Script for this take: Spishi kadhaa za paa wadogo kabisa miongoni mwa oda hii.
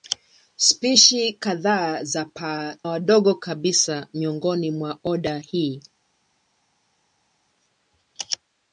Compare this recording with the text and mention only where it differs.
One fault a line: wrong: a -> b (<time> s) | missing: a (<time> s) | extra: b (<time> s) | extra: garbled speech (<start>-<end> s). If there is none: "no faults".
no faults